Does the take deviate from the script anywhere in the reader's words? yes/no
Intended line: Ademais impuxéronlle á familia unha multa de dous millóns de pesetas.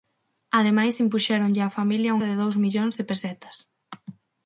yes